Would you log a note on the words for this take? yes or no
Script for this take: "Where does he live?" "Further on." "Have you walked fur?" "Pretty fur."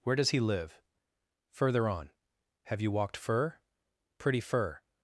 no